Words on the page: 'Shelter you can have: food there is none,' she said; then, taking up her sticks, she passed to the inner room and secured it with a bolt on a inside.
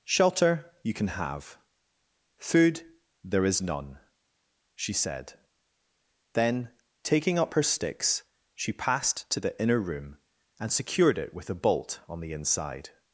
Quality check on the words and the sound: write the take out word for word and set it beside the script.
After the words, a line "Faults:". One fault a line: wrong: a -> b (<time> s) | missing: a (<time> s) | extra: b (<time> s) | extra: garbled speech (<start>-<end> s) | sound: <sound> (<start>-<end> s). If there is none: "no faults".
'Shelter you can have: food there is none,' she said; then, taking up her sticks, she passed to the inner room and secured it with a bolt on the inside.
Faults:
wrong: a -> the (12.2 s)